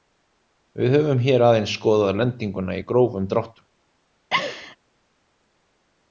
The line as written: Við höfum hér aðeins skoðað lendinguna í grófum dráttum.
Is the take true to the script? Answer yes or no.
yes